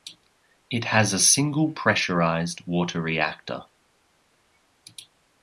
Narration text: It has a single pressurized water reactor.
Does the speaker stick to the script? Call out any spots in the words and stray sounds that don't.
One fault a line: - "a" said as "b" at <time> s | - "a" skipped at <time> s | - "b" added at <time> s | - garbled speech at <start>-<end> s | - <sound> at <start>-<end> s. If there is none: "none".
none